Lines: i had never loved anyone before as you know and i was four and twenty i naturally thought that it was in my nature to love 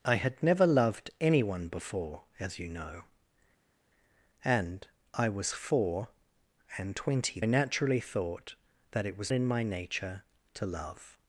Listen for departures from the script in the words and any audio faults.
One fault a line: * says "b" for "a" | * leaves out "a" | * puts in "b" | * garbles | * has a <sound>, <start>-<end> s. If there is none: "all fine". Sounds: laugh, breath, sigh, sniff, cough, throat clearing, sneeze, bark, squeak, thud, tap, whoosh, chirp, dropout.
all fine